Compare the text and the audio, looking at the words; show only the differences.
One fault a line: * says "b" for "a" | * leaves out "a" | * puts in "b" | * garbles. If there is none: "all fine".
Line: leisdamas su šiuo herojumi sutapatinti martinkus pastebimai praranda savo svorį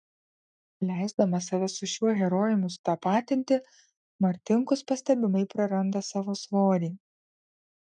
* puts in "save"